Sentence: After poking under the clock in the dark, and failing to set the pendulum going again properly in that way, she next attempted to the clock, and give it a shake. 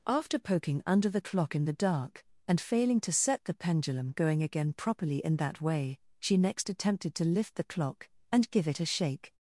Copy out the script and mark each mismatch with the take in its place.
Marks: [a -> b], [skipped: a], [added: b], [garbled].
After poking under the clock in the dark, and failing to set the pendulum going again properly in that way, she next attempted to [added: lift] the clock, and give it a shake.